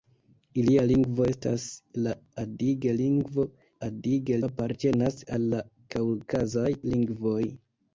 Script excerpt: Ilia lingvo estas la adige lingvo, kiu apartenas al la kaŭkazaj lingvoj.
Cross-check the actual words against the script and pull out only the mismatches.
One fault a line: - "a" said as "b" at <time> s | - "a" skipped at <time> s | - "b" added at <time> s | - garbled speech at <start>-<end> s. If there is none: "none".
- "kiu" said as "adige" at 3.9 s